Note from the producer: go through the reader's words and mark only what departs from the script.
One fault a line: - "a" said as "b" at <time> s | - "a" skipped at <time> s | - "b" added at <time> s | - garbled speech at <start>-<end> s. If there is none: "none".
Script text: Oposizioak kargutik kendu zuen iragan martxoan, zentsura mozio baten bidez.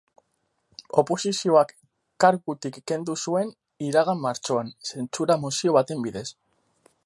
none